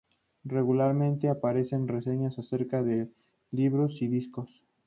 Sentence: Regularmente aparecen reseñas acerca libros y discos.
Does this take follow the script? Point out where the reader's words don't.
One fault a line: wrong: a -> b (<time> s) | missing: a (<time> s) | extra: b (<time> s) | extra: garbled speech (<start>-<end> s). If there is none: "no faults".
extra: de (2.8 s)